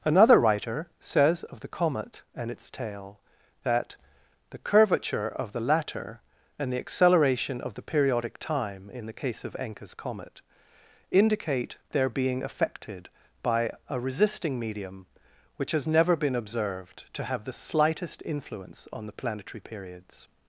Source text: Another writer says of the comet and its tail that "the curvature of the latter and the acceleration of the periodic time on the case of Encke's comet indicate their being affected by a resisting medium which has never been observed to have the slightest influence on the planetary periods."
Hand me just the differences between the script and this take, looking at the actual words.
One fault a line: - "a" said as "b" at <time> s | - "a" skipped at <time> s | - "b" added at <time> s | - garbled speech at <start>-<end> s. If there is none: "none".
- "on" said as "in" at 8.9 s